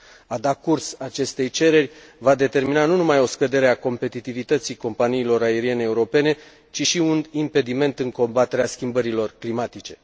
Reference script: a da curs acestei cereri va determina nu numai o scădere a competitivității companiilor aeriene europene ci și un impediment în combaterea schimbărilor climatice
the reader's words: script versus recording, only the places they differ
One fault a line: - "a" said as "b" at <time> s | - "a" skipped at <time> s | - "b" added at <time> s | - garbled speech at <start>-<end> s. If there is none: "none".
none